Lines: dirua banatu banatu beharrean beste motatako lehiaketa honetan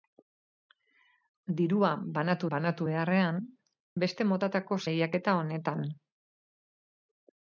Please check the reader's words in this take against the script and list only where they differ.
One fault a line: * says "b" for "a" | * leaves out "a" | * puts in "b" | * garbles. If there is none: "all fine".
all fine